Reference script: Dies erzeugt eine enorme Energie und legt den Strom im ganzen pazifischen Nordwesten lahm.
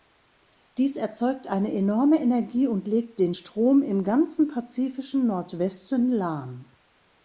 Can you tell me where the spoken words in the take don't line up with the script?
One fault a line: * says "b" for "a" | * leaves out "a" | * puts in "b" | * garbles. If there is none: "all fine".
all fine